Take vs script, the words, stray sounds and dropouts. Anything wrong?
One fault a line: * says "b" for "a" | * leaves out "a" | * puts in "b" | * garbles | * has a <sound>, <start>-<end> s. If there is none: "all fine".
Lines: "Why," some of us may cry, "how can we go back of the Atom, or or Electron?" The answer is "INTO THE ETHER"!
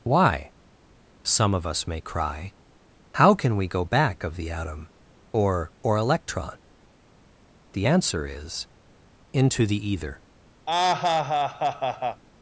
* has a laugh, 10.7-12.2 s